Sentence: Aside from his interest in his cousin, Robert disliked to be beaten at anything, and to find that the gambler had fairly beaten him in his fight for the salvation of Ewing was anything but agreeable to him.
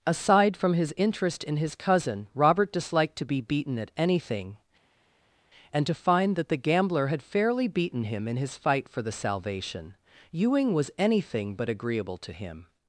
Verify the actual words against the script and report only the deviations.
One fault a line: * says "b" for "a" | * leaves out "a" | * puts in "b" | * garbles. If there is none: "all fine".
* leaves out "of"